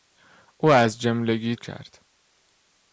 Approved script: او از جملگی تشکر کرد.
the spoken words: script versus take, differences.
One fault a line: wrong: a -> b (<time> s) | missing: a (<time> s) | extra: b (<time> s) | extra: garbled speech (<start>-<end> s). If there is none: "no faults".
missing: تشکر (1.6 s)